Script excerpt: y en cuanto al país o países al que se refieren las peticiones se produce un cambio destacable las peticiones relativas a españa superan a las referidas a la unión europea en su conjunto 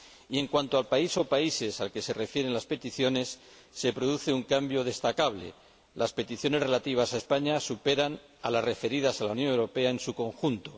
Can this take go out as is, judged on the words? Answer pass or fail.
pass